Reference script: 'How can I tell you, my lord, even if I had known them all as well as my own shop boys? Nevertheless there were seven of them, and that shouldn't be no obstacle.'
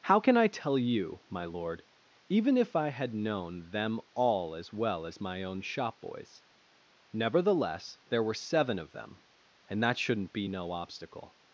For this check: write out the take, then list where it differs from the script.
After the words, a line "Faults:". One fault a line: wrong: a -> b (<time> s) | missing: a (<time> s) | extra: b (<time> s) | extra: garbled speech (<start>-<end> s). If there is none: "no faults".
'How can I tell you, my lord, even if I had known them all as well as my own shop boys? Nevertheless there were seven of them, and that shouldn't be no obstacle.'
Faults:
no faults